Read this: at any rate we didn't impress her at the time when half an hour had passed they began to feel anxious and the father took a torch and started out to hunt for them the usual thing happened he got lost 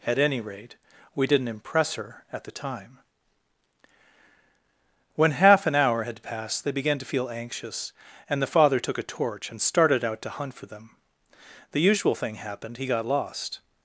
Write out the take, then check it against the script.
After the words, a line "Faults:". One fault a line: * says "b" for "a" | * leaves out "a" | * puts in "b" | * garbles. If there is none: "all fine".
at any rate we didn't impress her at the time when half an hour had passed they began to feel anxious and the father took a torch and started out to hunt for them the usual thing happened he got lost
Faults:
all fine